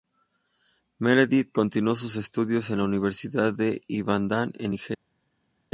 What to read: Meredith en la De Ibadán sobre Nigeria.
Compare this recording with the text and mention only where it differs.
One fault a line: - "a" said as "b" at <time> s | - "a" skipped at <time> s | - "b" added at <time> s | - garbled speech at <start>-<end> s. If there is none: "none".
- "continuó sus estudios" added at 1.5 s
- "Universidad" added at 2.9 s
- "sobre" said as "en" at 4.6 s